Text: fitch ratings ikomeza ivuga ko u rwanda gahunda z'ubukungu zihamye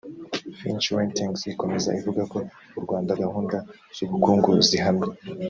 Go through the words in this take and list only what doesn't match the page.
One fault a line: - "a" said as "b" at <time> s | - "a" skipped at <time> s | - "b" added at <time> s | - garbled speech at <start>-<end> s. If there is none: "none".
none